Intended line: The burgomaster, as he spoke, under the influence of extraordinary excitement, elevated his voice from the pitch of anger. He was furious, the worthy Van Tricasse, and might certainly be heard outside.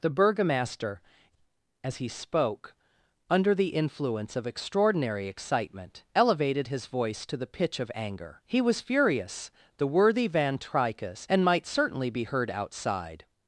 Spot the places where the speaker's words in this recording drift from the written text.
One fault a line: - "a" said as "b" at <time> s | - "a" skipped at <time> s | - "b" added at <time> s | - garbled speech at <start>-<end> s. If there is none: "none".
- "from" said as "to" at 7.3 s